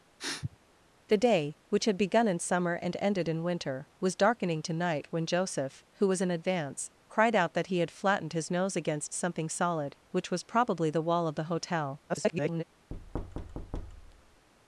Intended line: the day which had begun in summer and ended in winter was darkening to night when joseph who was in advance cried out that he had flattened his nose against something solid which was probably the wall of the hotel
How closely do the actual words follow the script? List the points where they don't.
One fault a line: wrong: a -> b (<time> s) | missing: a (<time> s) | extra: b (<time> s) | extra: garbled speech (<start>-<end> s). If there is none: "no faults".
extra: garbled speech (12.1-12.6 s)